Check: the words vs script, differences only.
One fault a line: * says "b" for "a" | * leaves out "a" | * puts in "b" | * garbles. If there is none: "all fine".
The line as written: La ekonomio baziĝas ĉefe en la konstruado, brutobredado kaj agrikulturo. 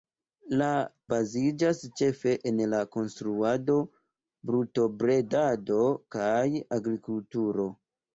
* leaves out "ekonomio"